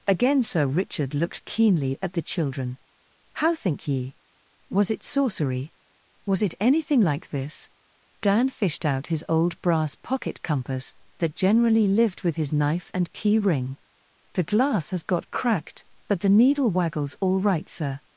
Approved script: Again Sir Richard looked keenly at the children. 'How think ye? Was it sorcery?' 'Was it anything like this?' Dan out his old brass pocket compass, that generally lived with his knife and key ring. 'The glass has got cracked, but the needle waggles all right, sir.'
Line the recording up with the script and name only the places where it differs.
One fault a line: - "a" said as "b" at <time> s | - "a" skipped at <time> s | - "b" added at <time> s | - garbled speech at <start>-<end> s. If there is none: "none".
- "fished" added at 8.5 s